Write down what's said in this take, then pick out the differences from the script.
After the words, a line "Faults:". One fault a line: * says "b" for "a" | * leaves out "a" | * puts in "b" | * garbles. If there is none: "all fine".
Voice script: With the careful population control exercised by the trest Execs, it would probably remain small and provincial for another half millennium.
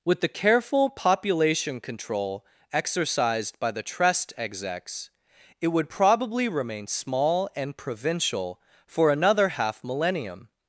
With the careful population control exercised by the trest Execs, it would probably remain small and provincial for another half millennium.
Faults:
all fine